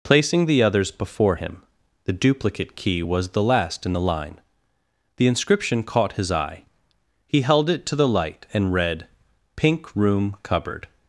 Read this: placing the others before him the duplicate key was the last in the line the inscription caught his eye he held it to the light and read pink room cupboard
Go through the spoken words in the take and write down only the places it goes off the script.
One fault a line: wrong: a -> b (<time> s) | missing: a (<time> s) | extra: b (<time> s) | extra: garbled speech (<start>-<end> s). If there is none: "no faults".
no faults